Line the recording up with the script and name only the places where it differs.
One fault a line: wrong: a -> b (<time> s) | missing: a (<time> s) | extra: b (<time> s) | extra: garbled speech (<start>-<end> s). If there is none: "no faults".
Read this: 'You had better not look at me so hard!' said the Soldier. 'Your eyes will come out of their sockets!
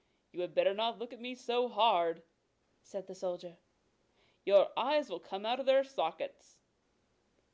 no faults